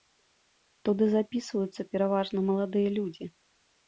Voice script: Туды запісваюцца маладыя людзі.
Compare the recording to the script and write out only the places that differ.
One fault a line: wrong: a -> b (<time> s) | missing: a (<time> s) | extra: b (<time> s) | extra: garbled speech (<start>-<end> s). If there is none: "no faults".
extra: пераважна (1.9 s)